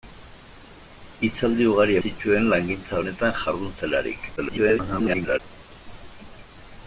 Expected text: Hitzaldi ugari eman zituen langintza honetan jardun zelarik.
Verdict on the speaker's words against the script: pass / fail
fail